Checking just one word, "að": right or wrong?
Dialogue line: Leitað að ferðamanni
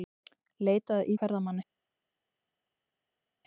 right